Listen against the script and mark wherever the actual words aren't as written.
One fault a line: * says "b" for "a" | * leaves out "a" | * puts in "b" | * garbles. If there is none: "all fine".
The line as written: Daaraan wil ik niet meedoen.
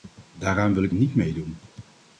all fine